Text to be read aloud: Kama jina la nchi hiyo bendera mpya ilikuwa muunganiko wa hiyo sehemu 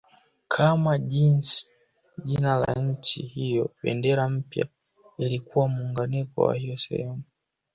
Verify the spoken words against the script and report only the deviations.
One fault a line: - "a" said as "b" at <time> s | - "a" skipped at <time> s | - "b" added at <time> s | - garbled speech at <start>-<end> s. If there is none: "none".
none